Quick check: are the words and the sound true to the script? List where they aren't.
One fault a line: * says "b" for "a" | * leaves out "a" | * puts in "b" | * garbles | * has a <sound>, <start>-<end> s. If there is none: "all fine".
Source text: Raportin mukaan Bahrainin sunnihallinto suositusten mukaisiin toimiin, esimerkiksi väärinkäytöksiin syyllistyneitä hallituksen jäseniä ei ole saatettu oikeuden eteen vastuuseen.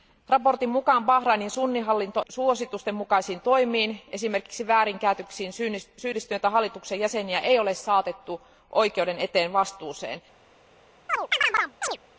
* has a chirp, 11.1-12.0 s